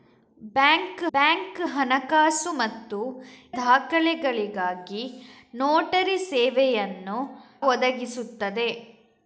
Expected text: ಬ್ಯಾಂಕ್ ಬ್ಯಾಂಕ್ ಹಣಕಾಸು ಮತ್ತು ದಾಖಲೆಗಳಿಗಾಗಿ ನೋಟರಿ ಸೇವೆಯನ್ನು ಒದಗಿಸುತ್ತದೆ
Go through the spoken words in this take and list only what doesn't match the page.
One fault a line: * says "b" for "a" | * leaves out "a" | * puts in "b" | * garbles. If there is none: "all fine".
all fine